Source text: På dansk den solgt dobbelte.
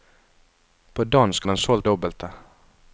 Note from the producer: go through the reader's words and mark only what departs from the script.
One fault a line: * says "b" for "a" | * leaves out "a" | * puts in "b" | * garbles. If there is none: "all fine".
all fine